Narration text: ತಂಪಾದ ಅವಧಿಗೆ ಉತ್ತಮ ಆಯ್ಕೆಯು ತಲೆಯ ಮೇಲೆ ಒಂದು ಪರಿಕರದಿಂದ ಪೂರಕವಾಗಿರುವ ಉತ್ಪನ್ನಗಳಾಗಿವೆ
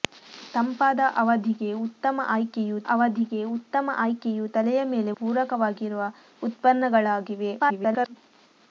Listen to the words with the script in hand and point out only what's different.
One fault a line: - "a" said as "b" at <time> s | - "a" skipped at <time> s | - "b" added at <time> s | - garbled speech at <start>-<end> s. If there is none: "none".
- "ಅವಧಿಗೆ ಉತ್ತಮ ಆಯ್ಕೆಯು" added at 2.9 s
- "ಒಂದು ಪರಿಕರದಿಂದ" skipped at 5.1 s
- garbled speech at 7.6-8.2 s